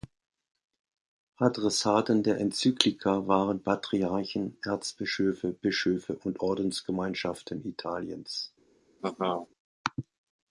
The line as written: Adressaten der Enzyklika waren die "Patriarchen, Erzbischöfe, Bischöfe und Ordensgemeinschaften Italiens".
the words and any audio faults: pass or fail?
fail